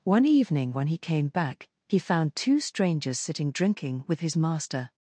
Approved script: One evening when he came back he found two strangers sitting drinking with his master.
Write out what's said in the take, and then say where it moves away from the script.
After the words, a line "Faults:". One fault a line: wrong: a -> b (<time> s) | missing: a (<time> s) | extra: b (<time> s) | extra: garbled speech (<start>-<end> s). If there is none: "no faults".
One evening when he came back he found two strangers sitting drinking with his master.
Faults:
no faults